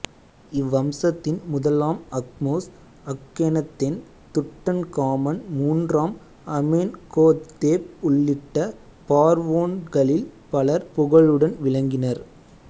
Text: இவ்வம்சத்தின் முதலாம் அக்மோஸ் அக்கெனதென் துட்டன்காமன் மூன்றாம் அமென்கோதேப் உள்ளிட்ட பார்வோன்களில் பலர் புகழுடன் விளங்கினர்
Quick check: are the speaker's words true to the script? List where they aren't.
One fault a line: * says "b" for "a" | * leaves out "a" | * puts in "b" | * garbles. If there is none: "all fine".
all fine